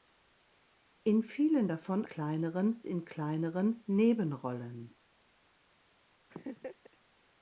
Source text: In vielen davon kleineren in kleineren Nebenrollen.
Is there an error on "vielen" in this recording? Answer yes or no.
no